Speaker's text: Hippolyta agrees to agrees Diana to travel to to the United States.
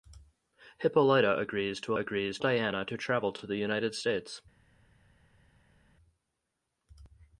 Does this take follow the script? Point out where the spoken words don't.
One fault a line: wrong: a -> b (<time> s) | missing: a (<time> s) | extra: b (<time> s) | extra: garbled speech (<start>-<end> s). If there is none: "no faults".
no faults